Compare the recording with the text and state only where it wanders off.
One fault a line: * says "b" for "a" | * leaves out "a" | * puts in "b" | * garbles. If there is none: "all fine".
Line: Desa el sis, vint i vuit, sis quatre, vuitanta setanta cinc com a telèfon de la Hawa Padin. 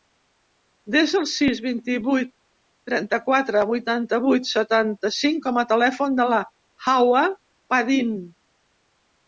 * says "trenta" for "sis"
* puts in "vuit"